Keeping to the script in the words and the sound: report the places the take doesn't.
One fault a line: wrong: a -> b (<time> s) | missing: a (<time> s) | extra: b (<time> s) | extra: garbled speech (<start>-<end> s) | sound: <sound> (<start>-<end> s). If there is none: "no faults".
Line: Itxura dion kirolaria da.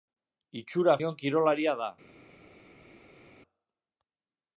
no faults